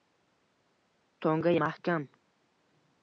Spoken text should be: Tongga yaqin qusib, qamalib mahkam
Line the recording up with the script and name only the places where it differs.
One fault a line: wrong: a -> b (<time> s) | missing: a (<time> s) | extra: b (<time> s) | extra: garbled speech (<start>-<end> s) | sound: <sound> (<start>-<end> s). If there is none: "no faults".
missing: yaqin qusib qamalib (1.5 s)